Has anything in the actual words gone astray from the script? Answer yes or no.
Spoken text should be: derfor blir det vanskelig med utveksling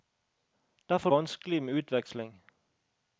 yes